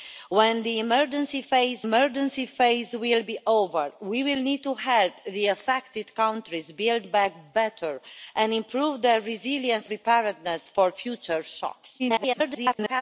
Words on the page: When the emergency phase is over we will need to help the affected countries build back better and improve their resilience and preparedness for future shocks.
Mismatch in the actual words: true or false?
true